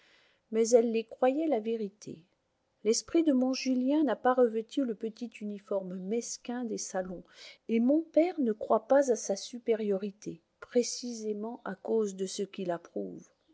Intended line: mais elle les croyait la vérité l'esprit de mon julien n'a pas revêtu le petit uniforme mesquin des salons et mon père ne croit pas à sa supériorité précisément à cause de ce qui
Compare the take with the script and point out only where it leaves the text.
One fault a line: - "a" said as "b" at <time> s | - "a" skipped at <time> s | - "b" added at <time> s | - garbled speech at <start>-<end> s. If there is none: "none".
none